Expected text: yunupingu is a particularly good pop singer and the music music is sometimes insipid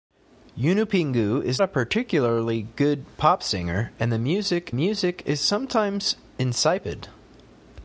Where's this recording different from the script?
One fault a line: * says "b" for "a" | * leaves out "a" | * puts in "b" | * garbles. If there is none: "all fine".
all fine